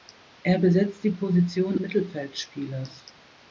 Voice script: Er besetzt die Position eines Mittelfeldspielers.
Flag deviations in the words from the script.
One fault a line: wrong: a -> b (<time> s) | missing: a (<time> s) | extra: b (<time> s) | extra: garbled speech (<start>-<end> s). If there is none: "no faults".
missing: eines (1.8 s)